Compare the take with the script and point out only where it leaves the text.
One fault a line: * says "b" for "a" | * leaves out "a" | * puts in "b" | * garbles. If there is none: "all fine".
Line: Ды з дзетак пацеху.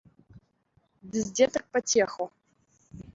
all fine